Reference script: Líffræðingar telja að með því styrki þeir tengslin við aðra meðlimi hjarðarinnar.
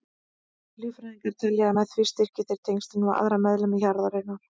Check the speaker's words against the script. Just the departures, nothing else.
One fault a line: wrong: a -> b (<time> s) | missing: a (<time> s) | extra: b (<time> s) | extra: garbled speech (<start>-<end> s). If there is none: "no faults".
no faults